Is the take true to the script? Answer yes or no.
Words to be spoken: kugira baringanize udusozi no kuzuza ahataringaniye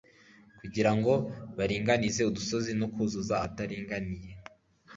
no